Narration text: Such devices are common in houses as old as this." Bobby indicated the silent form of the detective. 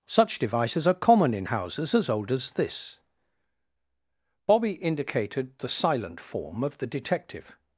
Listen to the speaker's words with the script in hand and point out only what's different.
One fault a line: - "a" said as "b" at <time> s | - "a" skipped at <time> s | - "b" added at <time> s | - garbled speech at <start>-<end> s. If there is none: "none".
none